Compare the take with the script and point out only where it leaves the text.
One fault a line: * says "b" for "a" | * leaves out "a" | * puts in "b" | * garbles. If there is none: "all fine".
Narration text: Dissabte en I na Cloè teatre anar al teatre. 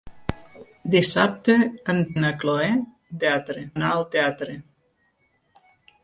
all fine